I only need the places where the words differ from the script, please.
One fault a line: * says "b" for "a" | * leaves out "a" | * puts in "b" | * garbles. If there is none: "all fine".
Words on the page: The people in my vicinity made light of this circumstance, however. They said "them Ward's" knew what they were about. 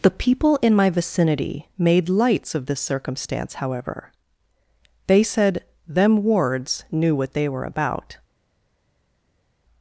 * says "lights" for "light"